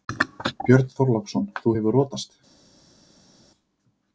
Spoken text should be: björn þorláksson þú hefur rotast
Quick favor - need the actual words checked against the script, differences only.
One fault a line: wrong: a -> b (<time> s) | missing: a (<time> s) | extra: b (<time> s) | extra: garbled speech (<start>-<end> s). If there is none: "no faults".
no faults